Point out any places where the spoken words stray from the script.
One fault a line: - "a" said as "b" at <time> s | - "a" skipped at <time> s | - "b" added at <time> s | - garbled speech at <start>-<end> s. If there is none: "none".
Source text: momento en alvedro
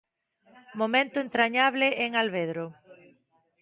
- "entrañable" added at 1.2 s